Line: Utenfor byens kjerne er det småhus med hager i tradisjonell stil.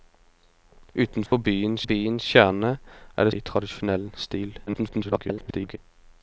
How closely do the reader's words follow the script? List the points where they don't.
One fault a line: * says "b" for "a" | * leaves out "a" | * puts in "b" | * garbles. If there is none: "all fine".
* puts in "byens"
* leaves out "småhus med hager"
* garbles